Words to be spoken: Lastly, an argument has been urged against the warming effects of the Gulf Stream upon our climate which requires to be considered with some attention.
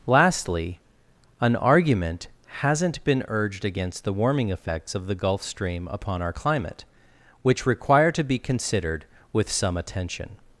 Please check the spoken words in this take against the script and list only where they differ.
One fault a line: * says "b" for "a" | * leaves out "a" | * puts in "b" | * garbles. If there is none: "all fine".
* says "hasn't" for "has"
* says "require" for "requires"